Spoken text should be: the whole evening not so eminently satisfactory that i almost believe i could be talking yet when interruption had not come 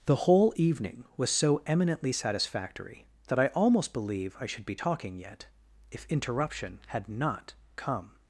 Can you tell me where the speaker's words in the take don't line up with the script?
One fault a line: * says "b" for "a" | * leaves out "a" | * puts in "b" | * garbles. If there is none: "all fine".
* says "was" for "not"
* says "should" for "could"
* says "if" for "when"